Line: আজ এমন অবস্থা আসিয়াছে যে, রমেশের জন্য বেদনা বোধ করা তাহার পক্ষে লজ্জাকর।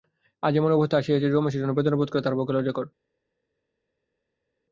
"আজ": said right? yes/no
yes